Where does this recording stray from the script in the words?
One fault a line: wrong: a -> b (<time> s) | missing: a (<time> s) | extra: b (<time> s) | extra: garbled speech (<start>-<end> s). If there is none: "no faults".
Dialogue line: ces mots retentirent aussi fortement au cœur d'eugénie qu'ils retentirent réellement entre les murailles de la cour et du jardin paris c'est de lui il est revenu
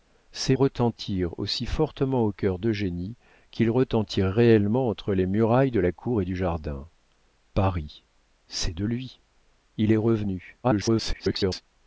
missing: mots (0.6 s)
extra: garbled speech (10.6-11.6 s)